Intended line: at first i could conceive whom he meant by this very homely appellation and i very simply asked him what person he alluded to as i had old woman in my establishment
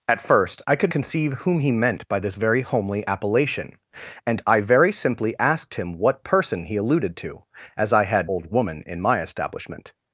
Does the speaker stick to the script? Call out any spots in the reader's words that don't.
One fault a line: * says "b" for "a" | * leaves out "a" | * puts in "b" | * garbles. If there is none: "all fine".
all fine